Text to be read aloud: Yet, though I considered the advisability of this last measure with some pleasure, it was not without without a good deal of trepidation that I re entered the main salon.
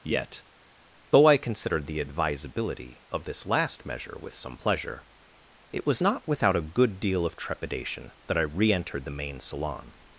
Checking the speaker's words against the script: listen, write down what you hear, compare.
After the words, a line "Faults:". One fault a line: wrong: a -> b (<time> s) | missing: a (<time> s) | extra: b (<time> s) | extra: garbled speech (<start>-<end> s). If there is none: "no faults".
Yet, though I considered the advisability of this last measure with some pleasure, it was not without a good deal of trepidation that I re entered the main salon.
Faults:
missing: without (6.5 s)